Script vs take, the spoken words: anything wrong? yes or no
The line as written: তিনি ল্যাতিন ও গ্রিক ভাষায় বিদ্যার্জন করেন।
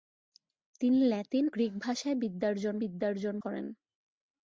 yes